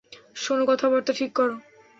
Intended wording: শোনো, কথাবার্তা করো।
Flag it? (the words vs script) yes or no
yes